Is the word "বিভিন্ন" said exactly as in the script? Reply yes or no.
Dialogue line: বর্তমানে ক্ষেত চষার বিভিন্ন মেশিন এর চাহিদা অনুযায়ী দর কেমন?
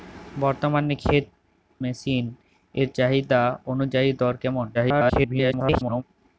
no